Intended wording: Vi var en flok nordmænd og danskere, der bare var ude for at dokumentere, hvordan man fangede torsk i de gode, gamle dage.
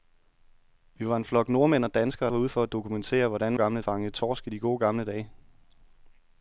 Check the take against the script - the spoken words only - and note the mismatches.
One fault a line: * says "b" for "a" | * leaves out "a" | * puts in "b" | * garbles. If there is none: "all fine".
* leaves out "der bare"
* says "gamle" for "man"